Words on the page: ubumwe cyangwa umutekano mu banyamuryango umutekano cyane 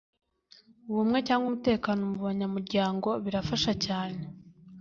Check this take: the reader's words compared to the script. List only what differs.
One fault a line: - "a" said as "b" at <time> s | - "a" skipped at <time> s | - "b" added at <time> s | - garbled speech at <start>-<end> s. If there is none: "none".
- "umutekano" said as "birafasha" at 3.2 s